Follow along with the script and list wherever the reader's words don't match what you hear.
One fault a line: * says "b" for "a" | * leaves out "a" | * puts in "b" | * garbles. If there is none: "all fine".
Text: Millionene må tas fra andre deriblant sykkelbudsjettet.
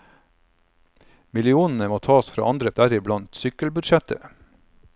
all fine